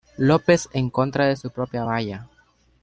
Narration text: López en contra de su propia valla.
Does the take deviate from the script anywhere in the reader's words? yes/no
no